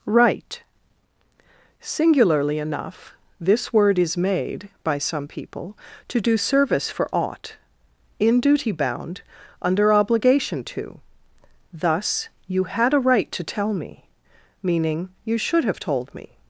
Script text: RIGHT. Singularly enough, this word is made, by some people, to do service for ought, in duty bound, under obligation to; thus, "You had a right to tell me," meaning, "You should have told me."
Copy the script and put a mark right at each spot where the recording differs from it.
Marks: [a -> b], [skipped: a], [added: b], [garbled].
RIGHT. Singularly enough, this word is made, by some people, to do service for ought, in duty bound, under obligation to; thus, "You had a right to tell me," meaning, "You should have told me."